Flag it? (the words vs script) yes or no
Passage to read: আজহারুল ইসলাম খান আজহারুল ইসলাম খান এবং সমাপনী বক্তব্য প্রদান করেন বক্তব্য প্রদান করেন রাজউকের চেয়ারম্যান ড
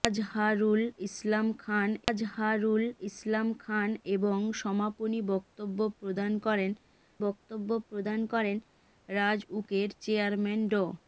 no